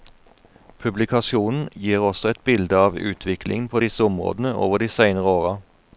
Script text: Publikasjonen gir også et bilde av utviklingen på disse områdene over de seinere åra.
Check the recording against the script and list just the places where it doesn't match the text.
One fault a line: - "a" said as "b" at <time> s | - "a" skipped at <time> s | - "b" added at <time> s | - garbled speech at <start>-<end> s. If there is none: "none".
none